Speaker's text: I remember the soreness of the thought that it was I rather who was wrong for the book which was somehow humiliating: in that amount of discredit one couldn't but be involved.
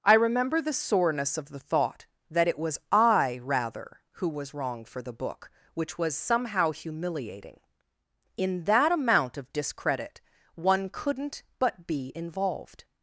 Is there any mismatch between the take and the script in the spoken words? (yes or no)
no